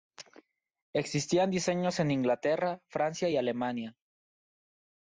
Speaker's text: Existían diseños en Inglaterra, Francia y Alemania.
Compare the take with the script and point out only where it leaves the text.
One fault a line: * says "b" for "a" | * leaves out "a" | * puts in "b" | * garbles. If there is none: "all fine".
all fine